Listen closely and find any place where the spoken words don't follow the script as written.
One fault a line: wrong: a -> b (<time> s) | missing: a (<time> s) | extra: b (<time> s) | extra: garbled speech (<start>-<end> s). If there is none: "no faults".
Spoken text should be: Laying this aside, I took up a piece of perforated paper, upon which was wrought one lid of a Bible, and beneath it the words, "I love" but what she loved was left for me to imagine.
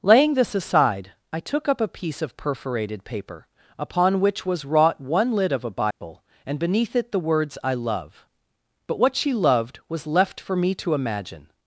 no faults